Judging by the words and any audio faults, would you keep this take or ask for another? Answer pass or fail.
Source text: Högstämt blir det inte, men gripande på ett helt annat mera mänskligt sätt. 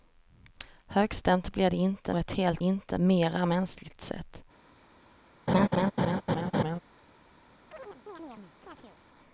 fail